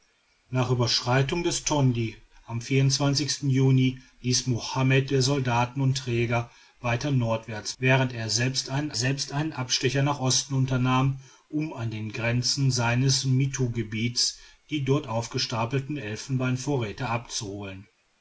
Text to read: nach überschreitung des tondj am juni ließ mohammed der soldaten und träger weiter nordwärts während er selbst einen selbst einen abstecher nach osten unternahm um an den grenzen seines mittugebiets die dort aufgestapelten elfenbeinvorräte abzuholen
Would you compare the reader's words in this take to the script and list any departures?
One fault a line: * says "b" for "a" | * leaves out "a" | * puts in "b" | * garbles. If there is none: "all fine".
all fine